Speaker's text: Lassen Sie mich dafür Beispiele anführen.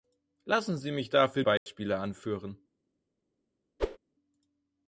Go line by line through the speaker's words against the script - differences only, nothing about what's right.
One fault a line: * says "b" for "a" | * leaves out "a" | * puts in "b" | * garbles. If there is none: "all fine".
all fine